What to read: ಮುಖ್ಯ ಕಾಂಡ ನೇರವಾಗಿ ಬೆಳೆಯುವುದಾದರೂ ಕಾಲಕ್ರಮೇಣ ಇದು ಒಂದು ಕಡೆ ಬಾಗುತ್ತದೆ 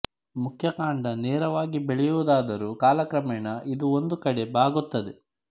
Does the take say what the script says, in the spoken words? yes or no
yes